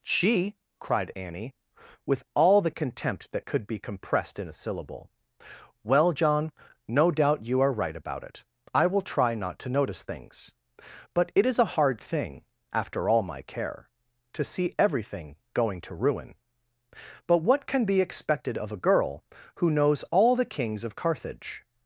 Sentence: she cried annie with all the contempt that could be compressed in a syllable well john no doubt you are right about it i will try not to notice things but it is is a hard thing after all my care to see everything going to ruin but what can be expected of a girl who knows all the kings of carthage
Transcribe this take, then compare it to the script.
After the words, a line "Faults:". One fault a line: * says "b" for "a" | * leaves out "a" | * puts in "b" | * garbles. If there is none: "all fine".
she cried annie with all the contempt that could be compressed in a syllable well john no doubt you are right about it i will try not to notice things but it is a hard thing after all my care to see everything going to ruin but what can be expected of a girl who knows all the kings of carthage
Faults:
* leaves out "is"